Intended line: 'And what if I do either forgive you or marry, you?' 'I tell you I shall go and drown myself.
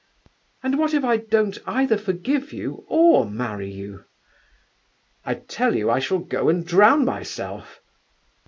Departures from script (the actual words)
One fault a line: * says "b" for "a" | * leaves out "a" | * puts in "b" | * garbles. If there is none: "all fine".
* says "don't" for "do"